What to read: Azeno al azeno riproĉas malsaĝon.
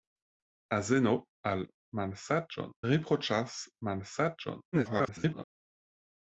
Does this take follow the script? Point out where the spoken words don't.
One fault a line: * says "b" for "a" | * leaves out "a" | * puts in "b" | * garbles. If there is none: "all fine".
* says "malsaĝon" for "azeno"
* garbles